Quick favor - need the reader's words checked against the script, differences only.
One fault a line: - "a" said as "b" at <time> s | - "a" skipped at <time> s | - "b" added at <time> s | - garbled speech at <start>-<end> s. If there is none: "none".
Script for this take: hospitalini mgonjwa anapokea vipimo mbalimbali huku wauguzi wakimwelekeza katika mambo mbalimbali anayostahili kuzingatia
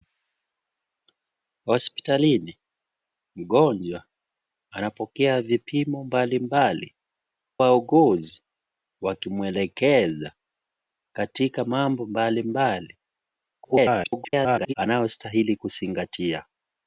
- "huku" skipped at 6.9 s
- garbled speech at 13.6-14.7 s